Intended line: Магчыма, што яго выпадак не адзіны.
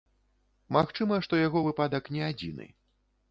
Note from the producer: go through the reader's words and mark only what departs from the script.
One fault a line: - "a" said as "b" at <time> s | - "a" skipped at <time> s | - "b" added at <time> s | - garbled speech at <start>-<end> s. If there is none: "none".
none